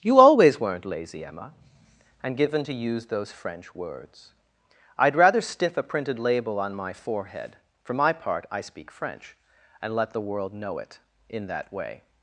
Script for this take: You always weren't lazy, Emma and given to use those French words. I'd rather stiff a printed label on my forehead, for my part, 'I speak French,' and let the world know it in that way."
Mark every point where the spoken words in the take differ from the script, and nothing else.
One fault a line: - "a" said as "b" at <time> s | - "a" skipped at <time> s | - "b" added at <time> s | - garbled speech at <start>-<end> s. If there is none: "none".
none